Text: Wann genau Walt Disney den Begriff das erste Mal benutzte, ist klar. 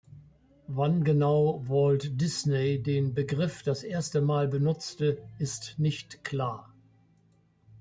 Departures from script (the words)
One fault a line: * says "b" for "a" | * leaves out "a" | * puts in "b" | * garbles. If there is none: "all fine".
* puts in "nicht"